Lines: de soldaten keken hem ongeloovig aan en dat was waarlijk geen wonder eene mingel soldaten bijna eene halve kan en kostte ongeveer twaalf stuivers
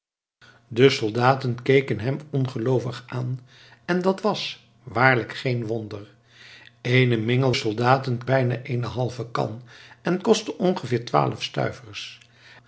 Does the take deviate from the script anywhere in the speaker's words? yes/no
no